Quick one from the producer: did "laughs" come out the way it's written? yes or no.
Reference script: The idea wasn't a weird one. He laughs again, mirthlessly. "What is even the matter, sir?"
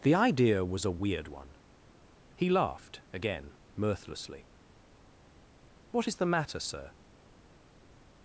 no